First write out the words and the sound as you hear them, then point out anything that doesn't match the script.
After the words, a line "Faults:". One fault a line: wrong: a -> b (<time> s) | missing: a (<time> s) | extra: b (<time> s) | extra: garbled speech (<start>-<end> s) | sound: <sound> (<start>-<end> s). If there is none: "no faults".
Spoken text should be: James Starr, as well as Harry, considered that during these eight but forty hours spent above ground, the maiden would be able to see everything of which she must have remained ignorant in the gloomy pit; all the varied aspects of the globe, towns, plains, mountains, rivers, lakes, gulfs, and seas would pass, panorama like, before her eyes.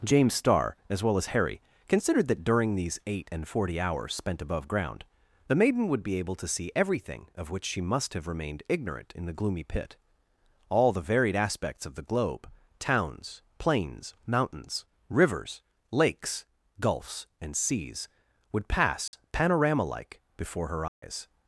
James Starr, as well as Harry, considered that during these eight and forty hours spent above ground, the maiden would be able to see everything of which she must have remained ignorant in the gloomy pit; all the varied aspects of the globe, towns, plains, mountains, rivers, lakes, gulfs, and seas would pass, panorama like, before her eyes.
Faults:
wrong: but -> and (3.3 s)
sound: dropout (19.1-19.1 s)
sound: dropout (20.9-21.0 s)